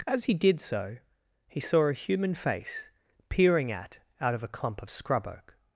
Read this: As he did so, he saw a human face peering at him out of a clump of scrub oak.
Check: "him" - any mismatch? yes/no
yes